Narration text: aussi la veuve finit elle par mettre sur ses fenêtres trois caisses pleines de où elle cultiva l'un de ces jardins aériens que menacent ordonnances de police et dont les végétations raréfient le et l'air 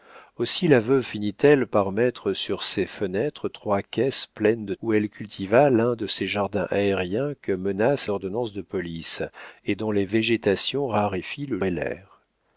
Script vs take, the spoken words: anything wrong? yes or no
no